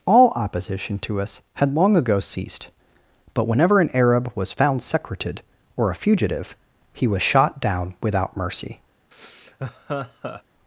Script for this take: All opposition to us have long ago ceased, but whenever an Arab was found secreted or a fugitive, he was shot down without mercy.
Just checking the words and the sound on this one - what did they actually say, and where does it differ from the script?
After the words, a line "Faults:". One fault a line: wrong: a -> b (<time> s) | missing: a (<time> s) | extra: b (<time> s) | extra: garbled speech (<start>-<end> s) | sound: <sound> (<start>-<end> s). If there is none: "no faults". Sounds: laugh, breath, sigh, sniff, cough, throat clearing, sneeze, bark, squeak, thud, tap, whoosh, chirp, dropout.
All opposition to us had long ago ceased, but whenever an Arab was found secreted or a fugitive, he was shot down without mercy.
Faults:
wrong: have -> had (1.6 s)
sound: laugh (9.1-10.4 s)